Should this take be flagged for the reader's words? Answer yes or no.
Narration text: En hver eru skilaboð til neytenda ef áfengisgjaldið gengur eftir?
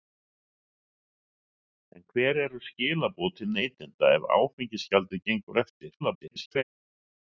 yes